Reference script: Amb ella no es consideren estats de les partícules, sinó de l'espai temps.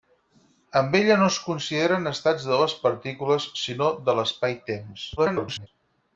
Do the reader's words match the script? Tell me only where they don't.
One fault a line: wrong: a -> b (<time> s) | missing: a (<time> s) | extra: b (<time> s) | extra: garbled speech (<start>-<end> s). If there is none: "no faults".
extra: garbled speech (5.2-5.7 s)